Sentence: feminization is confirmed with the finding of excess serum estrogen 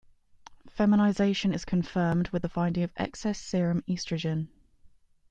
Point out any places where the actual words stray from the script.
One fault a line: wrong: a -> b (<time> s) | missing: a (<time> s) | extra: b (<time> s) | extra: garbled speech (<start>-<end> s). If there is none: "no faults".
no faults